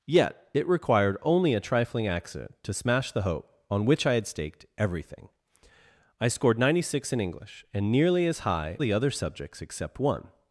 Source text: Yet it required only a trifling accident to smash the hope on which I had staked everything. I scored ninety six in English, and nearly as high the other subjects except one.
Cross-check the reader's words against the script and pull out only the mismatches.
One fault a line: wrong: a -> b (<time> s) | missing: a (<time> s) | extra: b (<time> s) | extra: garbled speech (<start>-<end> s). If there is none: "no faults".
no faults